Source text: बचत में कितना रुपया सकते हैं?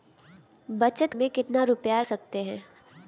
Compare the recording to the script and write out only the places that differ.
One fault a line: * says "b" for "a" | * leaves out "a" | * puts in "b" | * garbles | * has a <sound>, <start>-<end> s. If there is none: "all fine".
all fine